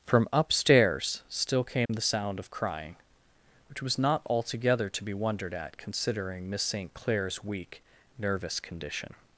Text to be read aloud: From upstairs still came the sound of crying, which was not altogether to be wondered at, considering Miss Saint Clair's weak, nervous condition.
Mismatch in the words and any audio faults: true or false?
true